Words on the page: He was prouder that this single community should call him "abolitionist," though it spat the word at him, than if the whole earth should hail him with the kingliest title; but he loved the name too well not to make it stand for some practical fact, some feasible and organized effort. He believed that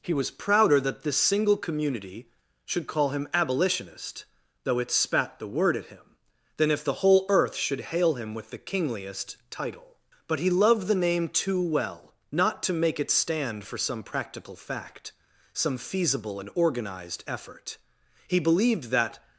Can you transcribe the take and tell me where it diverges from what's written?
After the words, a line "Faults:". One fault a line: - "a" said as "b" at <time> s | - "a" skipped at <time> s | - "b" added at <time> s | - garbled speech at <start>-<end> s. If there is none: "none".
He was prouder that this single community should call him "abolitionist," though it spat the word at him, than if the whole earth should hail him with the kingliest title; but he loved the name too well not to make it stand for some practical fact, some feasible and organized effort. He believed that
Faults:
none